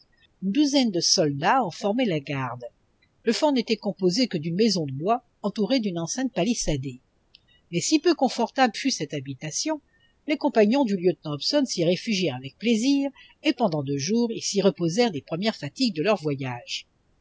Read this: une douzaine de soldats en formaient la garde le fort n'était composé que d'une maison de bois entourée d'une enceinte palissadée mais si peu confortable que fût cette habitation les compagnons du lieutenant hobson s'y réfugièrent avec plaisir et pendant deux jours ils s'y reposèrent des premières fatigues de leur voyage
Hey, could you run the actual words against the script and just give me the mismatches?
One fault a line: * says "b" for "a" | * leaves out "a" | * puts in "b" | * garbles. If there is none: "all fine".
* leaves out "que"